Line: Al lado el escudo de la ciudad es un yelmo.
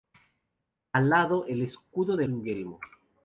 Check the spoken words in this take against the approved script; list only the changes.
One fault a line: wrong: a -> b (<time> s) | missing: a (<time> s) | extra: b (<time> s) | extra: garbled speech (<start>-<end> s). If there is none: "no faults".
missing: la ciudad es (2.3 s)